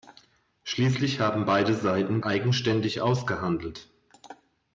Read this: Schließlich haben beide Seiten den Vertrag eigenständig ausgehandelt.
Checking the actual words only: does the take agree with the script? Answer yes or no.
no